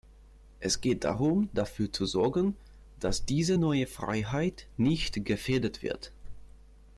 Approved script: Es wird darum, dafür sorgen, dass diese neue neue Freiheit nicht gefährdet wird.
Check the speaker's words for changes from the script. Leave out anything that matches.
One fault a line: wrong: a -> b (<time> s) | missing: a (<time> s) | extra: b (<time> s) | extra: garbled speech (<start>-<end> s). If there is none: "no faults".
wrong: wird -> geht (0.8 s)
extra: zu (1.9 s)
missing: neue (3.8 s)